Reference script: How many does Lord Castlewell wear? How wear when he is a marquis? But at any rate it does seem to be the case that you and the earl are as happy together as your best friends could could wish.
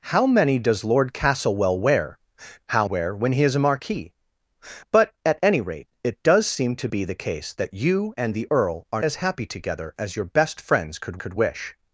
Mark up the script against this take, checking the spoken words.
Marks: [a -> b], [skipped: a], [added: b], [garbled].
How many does Lord Castlewell wear? How wear when he is a marquis? But at any rate it does seem to be the case that you and the earl are as happy together as your best friends could could wish.